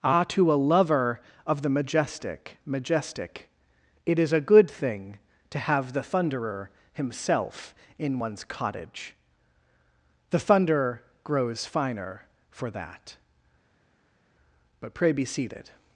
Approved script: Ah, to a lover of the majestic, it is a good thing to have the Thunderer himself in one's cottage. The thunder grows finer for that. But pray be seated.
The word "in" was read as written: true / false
true